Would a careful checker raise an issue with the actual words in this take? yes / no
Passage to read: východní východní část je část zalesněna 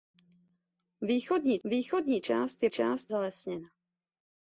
no